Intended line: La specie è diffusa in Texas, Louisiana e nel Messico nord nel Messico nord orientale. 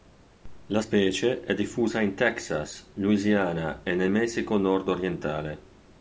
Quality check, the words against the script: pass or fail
fail